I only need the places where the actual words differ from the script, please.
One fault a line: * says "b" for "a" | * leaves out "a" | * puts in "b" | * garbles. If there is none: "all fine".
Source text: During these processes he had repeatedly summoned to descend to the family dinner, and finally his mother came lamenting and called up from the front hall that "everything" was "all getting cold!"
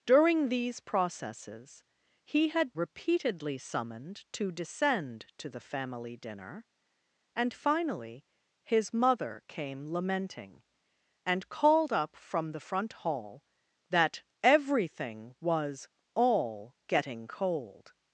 all fine